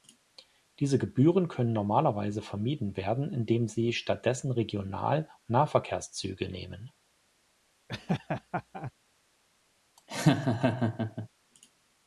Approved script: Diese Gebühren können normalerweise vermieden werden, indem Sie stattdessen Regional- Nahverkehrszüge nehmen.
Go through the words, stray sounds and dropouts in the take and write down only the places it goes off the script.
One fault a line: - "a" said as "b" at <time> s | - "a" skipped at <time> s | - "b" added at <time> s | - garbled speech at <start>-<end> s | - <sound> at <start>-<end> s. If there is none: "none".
- laugh at 7.9-8.9 s
- laugh at 10.0-11.3 s